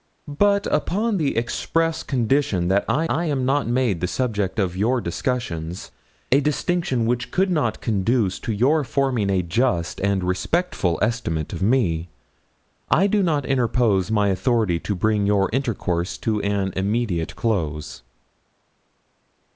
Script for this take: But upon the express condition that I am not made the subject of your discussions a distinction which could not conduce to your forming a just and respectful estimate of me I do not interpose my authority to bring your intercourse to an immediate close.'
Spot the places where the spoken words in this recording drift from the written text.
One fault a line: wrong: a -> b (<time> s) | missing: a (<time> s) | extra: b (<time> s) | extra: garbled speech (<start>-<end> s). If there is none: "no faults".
extra: I (3.1 s)